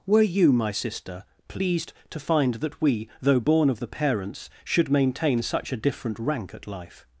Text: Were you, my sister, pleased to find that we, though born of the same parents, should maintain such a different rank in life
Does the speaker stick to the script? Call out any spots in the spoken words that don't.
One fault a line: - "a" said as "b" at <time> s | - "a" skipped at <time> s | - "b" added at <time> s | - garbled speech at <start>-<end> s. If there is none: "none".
- "same" skipped at 3.9 s
- "in" said as "at" at 6.5 s